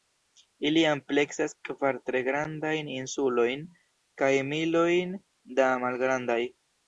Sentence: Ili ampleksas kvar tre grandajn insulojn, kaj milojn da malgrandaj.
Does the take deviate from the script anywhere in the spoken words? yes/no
no